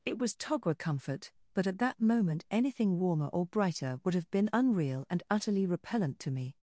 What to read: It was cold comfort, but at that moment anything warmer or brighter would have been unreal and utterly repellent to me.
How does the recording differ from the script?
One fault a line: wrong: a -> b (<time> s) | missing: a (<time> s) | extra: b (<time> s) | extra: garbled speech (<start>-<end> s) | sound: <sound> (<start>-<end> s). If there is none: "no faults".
wrong: cold -> togwa (0.3 s)